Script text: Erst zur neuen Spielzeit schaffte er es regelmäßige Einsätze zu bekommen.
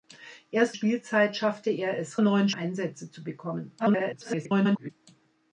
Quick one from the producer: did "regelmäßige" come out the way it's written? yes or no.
no